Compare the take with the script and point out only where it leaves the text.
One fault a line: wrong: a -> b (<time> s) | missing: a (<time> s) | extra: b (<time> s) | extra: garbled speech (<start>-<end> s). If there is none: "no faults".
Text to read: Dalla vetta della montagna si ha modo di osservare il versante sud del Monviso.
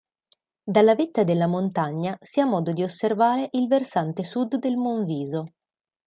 no faults